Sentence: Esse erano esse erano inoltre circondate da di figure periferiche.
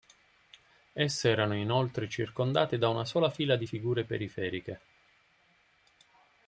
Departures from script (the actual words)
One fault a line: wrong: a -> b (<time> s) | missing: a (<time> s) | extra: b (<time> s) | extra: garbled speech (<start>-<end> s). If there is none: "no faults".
missing: esse erano (1.5 s)
extra: una sola fila (2.9 s)